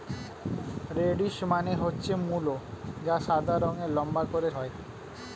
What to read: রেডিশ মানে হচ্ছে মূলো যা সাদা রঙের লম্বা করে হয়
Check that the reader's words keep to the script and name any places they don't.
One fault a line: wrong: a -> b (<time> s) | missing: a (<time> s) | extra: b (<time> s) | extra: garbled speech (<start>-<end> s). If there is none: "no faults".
no faults